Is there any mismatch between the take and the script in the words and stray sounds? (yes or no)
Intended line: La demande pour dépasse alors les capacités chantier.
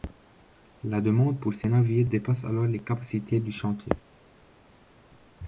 yes